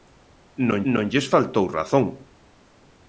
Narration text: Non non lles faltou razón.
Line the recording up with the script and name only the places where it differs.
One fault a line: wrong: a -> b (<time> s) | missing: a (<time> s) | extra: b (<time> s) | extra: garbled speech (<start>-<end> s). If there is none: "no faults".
no faults